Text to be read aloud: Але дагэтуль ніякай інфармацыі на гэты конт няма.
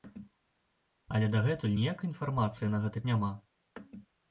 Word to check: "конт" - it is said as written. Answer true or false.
false